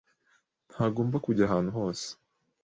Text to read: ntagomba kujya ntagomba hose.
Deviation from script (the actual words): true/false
true